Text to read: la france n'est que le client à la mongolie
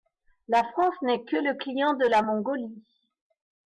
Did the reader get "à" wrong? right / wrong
wrong